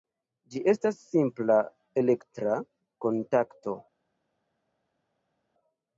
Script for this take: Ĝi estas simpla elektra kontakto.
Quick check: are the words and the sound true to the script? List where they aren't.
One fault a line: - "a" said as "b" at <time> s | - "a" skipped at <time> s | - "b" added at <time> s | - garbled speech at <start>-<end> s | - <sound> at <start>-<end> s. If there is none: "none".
none